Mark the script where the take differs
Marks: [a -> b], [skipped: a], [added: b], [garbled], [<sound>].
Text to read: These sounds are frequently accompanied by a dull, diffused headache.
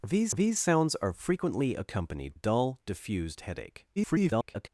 These [added: these] sounds are frequently accompanied [skipped: by a] dull, diffused headache. [garbled]